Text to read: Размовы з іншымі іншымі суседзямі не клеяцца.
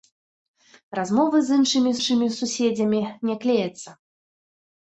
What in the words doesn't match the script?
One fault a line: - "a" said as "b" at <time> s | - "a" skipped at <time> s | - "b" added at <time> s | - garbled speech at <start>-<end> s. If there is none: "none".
none